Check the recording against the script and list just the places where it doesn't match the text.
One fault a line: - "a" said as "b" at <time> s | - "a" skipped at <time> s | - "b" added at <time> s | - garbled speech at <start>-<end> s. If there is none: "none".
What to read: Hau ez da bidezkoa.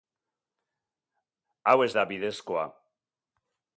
none